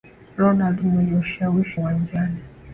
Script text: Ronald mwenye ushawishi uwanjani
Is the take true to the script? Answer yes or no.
yes